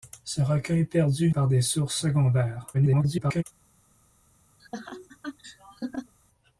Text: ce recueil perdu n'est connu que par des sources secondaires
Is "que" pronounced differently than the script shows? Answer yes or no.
yes